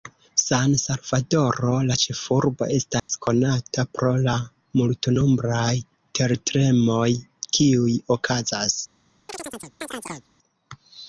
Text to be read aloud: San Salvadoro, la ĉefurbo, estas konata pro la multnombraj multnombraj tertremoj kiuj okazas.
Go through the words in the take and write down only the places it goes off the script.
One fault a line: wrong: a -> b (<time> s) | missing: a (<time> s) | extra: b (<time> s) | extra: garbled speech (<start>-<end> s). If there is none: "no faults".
missing: multnombraj (5.7 s)